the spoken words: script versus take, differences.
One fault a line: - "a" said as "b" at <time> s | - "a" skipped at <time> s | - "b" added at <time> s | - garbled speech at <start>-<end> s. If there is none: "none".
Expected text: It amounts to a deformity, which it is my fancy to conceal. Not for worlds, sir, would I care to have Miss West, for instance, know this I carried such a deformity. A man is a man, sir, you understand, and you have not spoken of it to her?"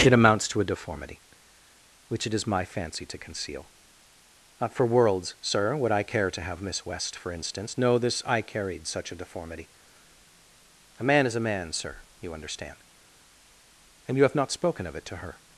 none